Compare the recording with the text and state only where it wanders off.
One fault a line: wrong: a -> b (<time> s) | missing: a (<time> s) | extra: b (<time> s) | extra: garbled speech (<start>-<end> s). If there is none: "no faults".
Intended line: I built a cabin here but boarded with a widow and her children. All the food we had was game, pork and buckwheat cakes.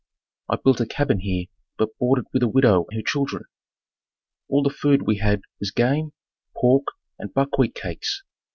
missing: and (2.9 s)